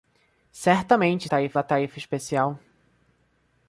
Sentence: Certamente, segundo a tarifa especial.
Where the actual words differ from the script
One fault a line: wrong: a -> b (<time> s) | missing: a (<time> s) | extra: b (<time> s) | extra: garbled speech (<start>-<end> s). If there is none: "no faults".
wrong: segundo -> tarifa (1.2 s)